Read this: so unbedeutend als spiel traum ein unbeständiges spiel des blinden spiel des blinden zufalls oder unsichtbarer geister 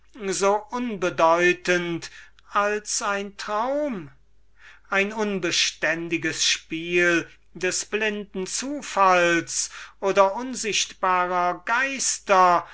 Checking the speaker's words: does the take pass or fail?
fail